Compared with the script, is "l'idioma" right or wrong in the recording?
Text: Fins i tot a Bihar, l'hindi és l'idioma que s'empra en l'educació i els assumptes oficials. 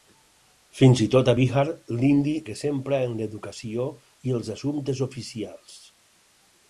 wrong